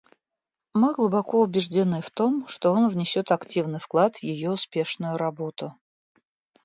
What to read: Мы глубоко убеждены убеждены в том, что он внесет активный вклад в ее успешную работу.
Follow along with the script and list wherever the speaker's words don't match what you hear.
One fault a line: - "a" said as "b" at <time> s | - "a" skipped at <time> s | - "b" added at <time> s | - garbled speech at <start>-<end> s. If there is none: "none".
- "убеждены" skipped at 2.0 s